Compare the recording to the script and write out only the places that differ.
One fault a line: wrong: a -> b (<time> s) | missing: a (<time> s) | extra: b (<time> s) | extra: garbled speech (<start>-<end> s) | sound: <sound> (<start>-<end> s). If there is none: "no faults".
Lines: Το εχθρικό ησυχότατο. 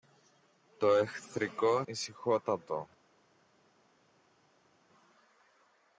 no faults